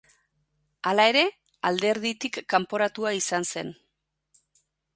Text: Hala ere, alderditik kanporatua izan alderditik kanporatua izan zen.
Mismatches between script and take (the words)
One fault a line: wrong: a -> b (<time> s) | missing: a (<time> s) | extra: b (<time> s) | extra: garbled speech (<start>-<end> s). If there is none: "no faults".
missing: alderditik kanporatua izan (3.5 s)